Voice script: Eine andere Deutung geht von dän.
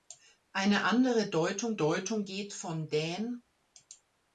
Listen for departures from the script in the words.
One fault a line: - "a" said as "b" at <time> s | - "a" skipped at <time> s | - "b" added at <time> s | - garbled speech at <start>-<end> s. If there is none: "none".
- "Deutung" added at 1.7 s